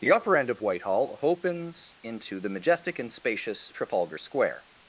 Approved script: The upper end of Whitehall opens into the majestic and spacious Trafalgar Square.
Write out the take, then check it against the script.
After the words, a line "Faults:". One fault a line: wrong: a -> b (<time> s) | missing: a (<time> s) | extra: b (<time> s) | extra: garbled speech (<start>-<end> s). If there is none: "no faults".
The upper end of Whitehall opens into the majestic and spacious Trafalgar Square.
Faults:
no faults